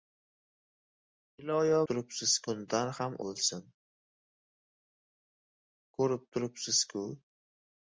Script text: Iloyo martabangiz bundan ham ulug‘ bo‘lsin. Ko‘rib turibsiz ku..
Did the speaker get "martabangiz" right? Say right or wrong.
wrong